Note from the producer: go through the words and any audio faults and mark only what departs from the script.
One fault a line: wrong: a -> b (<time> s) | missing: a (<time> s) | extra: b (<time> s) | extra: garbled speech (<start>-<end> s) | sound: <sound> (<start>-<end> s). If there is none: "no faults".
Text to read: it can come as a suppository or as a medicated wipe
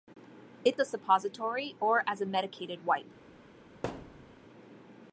missing: can come as (0.8 s)
sound: thud (3.8-4.3 s)